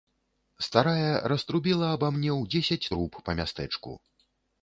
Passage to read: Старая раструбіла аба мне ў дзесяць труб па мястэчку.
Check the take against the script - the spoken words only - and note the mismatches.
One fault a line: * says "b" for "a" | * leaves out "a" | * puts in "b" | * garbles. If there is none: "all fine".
all fine